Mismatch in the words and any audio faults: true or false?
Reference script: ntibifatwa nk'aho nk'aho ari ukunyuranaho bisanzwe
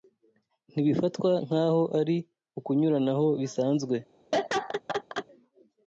true